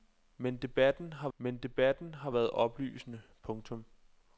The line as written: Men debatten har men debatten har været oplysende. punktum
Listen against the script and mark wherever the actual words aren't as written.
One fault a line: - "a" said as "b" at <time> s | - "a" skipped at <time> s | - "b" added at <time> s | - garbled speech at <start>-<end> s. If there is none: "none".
none